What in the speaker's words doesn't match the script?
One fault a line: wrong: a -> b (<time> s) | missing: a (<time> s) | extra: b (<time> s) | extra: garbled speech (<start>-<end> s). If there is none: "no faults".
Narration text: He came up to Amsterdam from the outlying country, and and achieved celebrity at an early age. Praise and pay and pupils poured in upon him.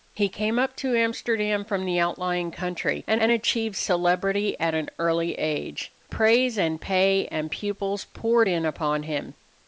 no faults